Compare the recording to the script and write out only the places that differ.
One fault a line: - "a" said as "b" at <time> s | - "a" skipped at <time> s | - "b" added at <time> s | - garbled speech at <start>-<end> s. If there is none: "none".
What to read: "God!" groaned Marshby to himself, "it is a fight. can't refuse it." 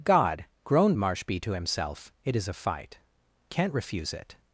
none